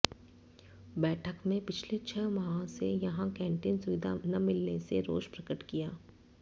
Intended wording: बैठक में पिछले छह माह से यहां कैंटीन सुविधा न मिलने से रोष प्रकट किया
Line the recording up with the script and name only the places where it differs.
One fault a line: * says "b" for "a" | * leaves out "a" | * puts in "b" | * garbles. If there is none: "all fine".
all fine